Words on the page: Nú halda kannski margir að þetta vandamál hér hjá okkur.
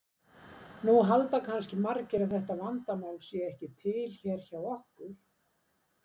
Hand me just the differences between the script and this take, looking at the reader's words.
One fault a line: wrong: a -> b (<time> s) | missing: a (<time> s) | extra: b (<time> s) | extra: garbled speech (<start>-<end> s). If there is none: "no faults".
extra: sé ekki til (3.2 s)